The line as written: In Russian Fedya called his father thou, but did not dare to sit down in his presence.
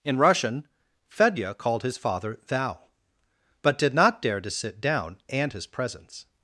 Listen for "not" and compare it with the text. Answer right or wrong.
right